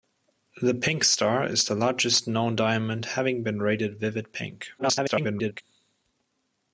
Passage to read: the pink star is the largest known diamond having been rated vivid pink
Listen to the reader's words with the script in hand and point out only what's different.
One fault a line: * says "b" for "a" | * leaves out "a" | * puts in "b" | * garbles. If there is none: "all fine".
* garbles